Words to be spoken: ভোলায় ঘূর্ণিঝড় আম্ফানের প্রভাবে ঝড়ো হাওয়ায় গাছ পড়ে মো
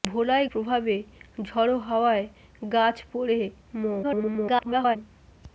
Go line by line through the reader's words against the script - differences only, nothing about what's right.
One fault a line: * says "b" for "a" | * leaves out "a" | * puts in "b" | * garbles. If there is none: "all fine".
* leaves out "ঘূর্ণিঝড় আম্ফানের"
* garbles